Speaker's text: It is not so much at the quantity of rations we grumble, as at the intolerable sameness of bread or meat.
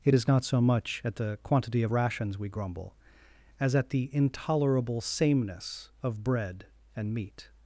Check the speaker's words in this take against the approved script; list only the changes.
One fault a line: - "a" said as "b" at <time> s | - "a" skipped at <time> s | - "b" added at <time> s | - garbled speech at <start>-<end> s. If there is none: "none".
- "or" said as "and" at 6.9 s